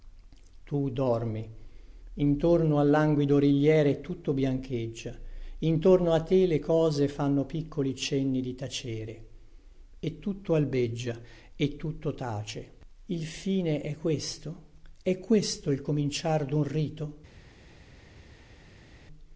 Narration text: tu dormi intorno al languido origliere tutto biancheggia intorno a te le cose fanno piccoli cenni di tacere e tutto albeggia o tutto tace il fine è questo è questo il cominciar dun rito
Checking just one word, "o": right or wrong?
wrong